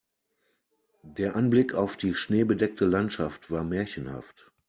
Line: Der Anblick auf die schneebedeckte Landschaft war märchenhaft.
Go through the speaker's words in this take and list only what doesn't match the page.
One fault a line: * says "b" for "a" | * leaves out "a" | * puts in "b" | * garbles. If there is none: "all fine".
all fine